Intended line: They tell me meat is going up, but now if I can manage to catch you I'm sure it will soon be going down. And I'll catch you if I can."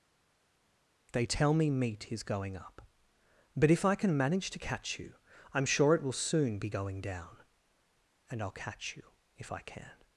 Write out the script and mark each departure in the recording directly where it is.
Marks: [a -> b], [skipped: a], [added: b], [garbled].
They tell me meat is going up, but [skipped: now] if I can manage to catch you I'm sure it will soon be going down. And I'll catch you if I can."